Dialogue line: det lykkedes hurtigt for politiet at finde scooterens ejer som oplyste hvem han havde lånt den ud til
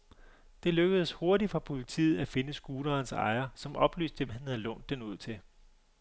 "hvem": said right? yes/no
no